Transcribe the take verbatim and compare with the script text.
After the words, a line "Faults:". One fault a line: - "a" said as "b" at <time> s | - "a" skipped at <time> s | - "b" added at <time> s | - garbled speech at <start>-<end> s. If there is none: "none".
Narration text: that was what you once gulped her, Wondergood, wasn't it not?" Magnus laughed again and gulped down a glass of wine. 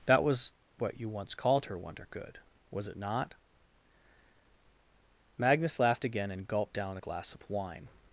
that was what you once called her, Wondergood, was it not?" Magnus laughed again and gulped down a glass of wine.
Faults:
- "gulped" said as "called" at 1.4 s
- "wasn't" said as "was" at 2.7 s